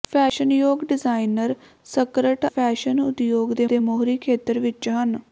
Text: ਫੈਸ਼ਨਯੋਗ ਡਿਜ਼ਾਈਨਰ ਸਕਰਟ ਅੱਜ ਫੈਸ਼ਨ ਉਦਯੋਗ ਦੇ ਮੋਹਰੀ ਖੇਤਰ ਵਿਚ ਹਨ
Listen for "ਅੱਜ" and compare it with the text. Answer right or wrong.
wrong